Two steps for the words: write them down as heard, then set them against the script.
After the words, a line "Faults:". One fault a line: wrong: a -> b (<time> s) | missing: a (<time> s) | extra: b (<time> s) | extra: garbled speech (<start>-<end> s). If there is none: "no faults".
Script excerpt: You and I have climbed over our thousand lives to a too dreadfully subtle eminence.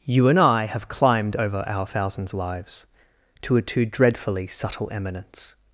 You and I have climbed over our thousands lives to a too dreadfully subtle eminence.
Faults:
wrong: thousand -> thousands (1.8 s)